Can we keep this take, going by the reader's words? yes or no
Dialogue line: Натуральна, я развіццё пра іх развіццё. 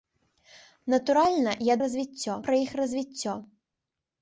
yes